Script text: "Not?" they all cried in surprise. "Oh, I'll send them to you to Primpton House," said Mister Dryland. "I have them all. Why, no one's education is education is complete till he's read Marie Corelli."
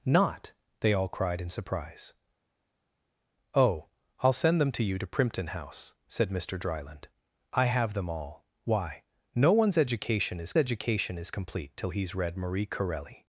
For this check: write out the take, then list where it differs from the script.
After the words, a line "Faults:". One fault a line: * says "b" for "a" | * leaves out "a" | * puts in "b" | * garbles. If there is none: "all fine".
"Not?" they all cried in surprise. "Oh, I'll send them to you to Primpton House," said Mister Dryland. "I have them all. Why, no one's education is education is complete till he's read Marie Corelli."
Faults:
all fine